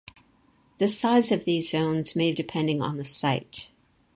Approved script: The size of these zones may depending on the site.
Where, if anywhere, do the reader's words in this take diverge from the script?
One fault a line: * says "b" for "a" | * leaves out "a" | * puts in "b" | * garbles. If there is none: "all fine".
all fine